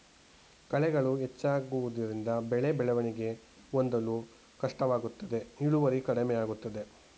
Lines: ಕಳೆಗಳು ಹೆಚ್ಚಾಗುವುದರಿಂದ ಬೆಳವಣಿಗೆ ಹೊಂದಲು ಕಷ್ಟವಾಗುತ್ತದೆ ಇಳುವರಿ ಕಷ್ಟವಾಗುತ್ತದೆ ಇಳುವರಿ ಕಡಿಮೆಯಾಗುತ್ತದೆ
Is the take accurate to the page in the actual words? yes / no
no